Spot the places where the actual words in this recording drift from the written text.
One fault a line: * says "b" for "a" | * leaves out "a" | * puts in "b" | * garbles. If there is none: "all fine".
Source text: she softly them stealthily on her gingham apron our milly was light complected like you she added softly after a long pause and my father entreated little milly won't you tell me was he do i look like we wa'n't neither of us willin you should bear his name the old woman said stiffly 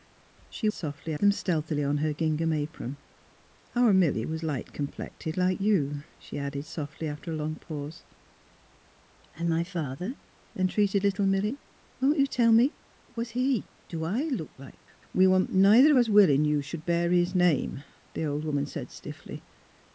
all fine